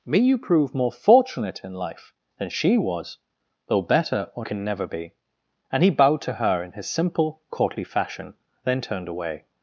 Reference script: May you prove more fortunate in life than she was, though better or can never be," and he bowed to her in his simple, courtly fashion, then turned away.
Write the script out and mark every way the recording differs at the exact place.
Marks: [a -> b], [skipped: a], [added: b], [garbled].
May you prove more fortunate in life than she was, though better or can never be," and he bowed to her in his simple, courtly fashion, then turned away.